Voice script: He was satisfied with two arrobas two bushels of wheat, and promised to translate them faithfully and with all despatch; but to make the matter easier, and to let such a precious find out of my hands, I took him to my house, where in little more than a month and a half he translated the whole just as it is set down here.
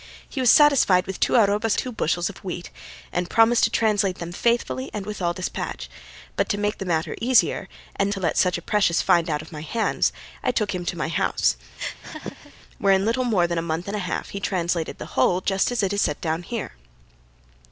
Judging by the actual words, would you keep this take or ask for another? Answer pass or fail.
pass